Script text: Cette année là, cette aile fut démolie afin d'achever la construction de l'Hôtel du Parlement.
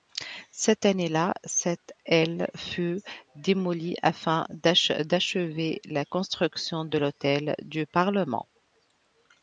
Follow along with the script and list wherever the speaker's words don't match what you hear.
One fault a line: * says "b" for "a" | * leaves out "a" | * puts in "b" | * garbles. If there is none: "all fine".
all fine